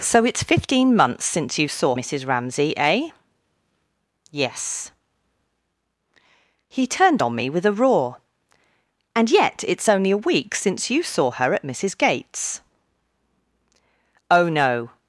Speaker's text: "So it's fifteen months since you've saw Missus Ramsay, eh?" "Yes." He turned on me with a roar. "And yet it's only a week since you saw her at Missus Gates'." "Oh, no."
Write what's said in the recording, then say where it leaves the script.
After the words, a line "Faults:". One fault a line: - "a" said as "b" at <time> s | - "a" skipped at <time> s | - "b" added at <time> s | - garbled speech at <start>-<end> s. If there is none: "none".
"So it's fifteen months since you've saw Missus Ramsay, eh?" "Yes." He turned on me with a roar. "And yet it's only a week since you saw her at Missus Gates'." "Oh, no."
Faults:
none